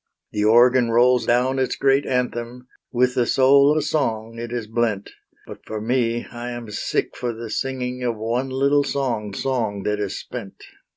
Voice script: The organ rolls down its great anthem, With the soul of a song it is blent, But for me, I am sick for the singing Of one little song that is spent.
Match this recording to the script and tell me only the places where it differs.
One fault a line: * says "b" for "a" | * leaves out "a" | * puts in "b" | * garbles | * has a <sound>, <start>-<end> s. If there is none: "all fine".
* leaves out "of"
* puts in "song"